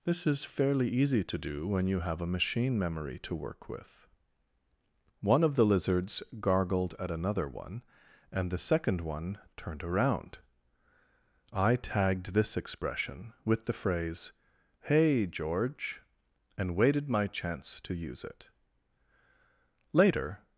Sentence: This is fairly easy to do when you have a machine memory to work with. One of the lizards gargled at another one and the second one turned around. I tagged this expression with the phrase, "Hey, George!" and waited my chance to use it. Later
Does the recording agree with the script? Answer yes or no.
yes